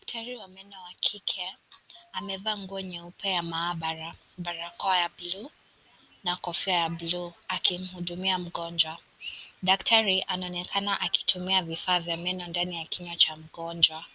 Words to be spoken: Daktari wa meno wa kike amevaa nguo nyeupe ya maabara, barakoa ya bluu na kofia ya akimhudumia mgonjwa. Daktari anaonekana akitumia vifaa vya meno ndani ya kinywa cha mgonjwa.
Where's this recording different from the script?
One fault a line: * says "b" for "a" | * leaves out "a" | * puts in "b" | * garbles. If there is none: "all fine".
* puts in "bluu"